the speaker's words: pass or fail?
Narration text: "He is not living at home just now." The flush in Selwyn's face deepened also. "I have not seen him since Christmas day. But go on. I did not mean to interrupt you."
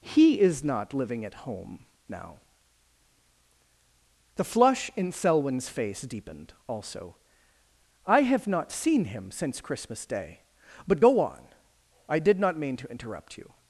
fail